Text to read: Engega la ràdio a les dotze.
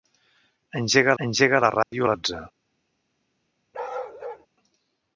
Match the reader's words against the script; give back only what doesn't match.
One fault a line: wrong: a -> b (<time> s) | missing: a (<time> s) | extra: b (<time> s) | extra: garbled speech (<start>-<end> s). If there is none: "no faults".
extra: engega (1.2 s)
missing: les (2.1 s)